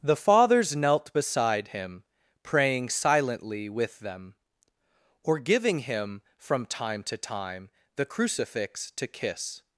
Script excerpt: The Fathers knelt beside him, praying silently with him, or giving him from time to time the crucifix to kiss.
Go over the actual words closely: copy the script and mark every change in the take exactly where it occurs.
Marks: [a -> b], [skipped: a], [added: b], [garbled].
The Fathers knelt beside him, praying silently with [him, -> them] or giving him from time to time the crucifix to kiss.